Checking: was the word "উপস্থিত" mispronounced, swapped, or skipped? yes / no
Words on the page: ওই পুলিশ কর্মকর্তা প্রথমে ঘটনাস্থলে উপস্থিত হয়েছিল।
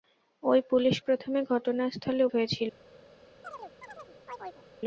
yes